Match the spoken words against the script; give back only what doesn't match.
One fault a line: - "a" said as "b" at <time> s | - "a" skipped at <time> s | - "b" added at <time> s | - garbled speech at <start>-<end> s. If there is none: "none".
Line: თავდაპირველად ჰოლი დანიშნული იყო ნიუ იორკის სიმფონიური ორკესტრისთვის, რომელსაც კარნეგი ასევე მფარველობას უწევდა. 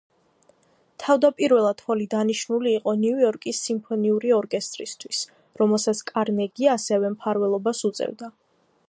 none